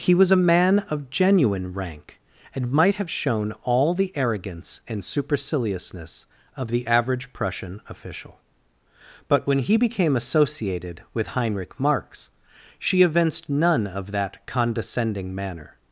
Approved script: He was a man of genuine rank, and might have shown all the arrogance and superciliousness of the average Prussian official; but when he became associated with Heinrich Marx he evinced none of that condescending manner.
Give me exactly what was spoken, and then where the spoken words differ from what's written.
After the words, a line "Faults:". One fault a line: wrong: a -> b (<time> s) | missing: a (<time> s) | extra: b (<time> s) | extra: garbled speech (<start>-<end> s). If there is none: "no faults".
He was a man of genuine rank, and might have shown all the arrogance and superciliousness of the average Prussian official; but when he became associated with Heinrich Marx she evinced none of that condescending manner.
Faults:
wrong: he -> she (12.8 s)